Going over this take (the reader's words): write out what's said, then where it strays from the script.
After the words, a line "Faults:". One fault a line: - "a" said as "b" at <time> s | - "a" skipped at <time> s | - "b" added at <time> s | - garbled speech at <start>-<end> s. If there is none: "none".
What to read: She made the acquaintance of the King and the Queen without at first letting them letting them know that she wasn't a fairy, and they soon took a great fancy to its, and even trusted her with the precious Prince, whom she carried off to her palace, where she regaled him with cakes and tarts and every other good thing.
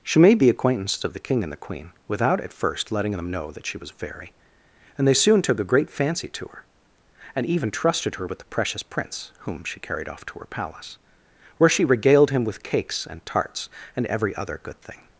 She made the acquaintance of the King and the Queen without at first letting them know that she was a fairy, and they soon took a great fancy to her, and even trusted her with the precious Prince, whom she carried off to her palace, where she regaled him with cakes and tarts and every other good thing.
Faults:
- "letting them" skipped at 3.3 s
- "wasn't" said as "was" at 3.8 s
- "its" said as "her" at 6.5 s